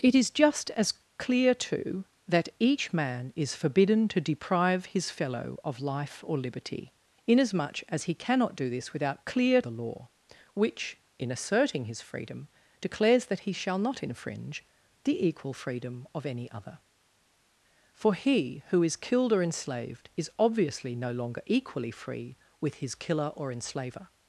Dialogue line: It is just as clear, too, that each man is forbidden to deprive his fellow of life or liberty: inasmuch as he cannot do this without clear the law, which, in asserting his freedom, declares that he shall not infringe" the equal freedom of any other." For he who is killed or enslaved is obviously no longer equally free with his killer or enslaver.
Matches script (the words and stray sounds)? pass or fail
pass